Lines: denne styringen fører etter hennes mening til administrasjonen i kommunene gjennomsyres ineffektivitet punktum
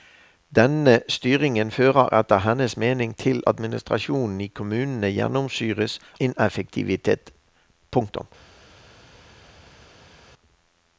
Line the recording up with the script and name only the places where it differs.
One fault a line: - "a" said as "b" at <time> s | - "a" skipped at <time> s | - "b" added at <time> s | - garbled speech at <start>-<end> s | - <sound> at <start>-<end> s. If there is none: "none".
none